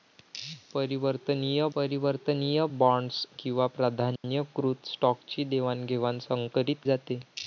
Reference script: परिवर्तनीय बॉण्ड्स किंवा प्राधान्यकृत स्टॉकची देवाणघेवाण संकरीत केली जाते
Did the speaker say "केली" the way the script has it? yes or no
no